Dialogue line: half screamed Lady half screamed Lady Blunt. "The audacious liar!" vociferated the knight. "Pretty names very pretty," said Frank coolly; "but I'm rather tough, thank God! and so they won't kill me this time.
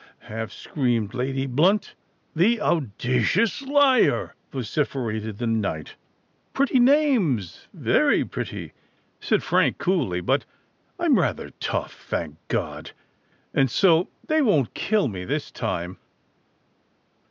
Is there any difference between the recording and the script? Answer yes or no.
yes